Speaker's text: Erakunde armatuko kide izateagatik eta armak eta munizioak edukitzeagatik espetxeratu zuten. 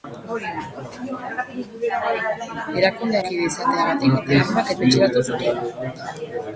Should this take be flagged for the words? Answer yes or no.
yes